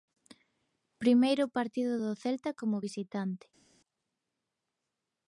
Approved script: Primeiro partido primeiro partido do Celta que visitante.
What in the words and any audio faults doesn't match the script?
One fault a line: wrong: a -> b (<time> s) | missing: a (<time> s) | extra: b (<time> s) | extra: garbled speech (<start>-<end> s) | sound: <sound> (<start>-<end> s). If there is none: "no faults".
missing: primeiro partido (1.9 s)
wrong: que -> como (2.6 s)